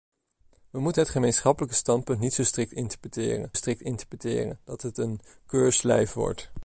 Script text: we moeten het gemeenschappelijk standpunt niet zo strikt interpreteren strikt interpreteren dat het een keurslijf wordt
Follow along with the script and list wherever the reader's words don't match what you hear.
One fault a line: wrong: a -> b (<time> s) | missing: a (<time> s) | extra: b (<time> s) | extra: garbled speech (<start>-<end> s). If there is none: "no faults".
no faults